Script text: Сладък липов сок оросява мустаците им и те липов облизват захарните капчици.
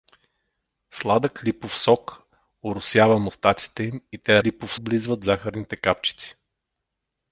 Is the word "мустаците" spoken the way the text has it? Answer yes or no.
yes